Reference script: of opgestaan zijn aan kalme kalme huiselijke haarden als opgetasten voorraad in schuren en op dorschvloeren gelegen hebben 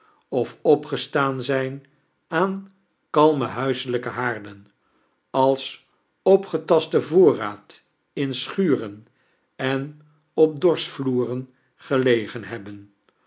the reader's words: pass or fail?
fail